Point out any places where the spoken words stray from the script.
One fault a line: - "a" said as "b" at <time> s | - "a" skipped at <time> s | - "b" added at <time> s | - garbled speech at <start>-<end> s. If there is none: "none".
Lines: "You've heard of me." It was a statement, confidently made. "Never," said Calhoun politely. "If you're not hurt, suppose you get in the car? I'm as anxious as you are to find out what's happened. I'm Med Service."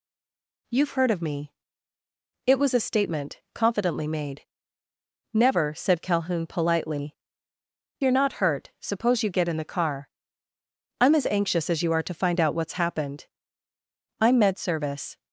- "If" skipped at 7.2 s